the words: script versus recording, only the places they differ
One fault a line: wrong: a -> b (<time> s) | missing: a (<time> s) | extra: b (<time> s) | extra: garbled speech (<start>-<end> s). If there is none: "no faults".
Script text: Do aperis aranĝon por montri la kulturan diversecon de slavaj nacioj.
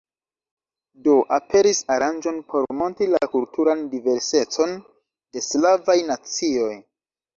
no faults